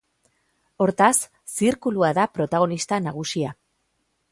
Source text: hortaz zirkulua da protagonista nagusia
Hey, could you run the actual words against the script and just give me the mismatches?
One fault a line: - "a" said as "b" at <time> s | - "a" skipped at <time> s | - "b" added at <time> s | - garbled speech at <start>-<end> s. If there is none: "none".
none